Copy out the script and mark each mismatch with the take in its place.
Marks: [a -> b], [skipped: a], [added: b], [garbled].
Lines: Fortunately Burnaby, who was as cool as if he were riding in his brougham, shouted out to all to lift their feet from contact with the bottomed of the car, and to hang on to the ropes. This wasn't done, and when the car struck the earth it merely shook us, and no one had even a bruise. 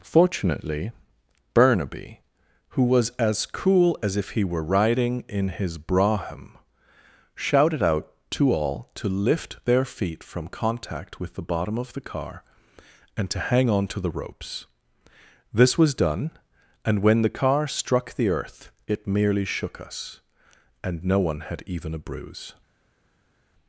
Fortunately Burnaby, who was as cool as if he were riding in his brougham, shouted out to all to lift their feet from contact with the [bottomed -> bottom] of the car, and to hang on to the ropes. This [wasn't -> was] done, and when the car struck the earth it merely shook us, and no one had even a bruise.